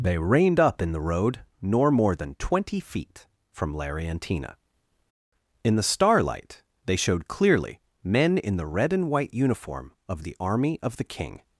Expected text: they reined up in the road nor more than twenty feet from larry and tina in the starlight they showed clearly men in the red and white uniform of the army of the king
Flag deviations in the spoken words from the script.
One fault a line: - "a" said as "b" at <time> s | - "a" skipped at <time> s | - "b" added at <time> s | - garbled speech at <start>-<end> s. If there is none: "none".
none